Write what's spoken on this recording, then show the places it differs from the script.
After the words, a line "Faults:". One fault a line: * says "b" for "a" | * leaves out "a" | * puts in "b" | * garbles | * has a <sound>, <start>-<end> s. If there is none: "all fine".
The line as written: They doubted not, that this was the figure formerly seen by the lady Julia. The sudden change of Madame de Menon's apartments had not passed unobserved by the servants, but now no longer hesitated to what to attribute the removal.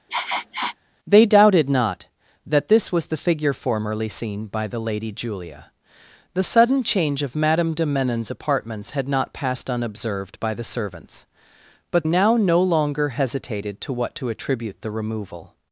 They doubted not, that this was the figure formerly seen by the lady Julia. The sudden change of Madame de Menon's apartments had not passed unobserved by the servants, but now no longer hesitated to what to attribute the removal.
Faults:
* has a sniff, 0.1-0.8 s